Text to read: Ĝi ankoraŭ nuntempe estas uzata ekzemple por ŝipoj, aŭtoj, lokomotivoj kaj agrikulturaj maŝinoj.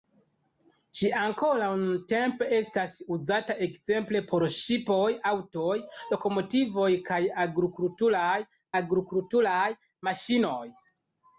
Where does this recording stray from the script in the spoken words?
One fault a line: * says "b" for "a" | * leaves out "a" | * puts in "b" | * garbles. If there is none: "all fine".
* puts in "agrikulturaj"